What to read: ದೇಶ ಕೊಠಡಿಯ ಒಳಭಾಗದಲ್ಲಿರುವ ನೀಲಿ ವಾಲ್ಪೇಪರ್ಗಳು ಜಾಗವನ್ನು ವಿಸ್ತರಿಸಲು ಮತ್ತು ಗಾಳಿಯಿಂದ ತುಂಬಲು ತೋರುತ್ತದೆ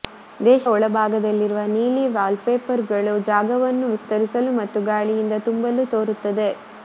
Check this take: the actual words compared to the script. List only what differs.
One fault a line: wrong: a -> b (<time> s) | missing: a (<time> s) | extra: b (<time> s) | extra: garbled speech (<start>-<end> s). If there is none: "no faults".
missing: ಕೊಠಡಿಯ (0.6 s)